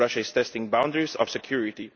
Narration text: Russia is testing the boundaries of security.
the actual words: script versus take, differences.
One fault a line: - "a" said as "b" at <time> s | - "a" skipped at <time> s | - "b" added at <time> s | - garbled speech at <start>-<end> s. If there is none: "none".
none